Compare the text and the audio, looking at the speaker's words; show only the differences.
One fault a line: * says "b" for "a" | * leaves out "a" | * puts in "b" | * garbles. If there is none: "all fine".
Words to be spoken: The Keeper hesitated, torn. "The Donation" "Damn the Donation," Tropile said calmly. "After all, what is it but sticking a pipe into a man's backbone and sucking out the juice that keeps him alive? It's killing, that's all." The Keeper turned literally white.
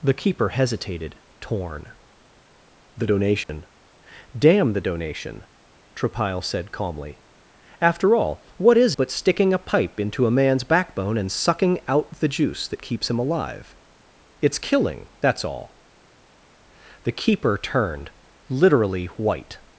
* leaves out "it"